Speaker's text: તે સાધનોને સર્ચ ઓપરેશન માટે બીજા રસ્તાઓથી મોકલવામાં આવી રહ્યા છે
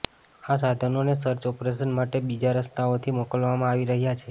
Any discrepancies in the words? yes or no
yes